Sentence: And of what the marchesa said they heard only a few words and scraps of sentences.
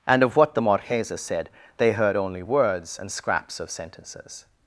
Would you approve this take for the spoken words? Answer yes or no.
no